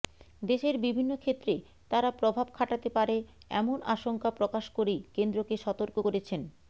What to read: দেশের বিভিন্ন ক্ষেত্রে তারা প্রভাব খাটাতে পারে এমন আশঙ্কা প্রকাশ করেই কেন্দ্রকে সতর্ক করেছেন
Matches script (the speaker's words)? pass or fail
pass